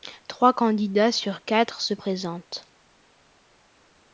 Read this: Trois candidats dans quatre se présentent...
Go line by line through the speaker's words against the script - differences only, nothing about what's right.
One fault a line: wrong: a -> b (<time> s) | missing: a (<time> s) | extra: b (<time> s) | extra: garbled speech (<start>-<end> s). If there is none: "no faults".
wrong: dans -> sur (1.1 s)